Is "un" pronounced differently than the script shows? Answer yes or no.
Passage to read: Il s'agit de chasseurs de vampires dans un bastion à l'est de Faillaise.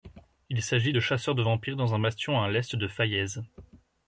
no